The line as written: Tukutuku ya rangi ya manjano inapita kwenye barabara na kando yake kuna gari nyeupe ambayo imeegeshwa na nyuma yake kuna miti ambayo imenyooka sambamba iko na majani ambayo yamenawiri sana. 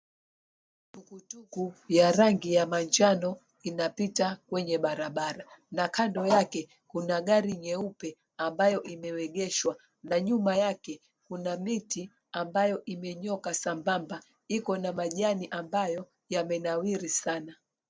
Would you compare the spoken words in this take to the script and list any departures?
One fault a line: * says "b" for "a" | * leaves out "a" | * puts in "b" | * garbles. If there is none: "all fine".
all fine